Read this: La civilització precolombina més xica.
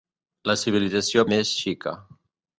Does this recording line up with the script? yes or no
no